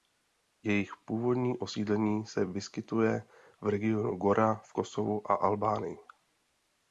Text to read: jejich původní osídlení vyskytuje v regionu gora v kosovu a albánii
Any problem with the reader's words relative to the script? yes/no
yes